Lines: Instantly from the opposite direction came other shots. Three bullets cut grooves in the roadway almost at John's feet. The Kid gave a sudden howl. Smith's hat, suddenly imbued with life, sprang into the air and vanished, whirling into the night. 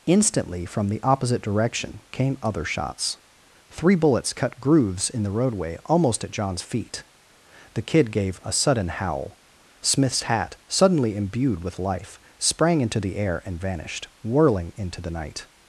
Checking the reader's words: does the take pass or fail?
pass